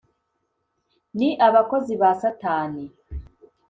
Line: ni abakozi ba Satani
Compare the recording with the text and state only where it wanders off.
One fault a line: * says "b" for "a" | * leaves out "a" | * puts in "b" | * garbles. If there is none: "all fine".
all fine